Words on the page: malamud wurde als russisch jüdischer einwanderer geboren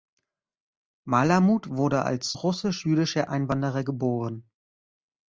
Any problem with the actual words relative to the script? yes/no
no